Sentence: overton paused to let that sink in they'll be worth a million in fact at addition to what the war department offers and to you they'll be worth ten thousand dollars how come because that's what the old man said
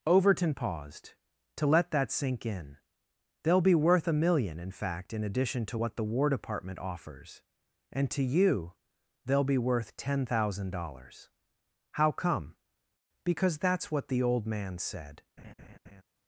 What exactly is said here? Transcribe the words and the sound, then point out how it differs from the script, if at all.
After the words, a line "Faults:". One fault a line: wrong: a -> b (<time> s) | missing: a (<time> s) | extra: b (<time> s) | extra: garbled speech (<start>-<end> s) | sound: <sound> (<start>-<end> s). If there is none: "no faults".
overton paused to let that sink in they'll be worth a million in fact in addition to what the war department offers and to you they'll be worth ten thousand dollars how come because that's what the old man said
Faults:
wrong: at -> in (5.1 s)
sound: laugh (15.4-16.0 s)